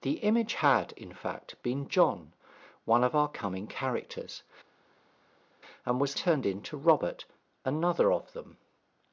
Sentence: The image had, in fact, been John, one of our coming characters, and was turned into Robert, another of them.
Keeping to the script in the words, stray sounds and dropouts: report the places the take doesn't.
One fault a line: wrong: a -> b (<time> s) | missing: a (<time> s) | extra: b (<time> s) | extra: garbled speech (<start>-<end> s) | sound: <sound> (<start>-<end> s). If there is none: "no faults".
no faults